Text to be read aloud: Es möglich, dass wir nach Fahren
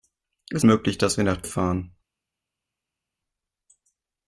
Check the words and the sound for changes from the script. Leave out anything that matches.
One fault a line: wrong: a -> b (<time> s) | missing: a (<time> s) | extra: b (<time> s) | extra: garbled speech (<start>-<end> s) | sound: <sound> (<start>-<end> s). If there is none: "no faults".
no faults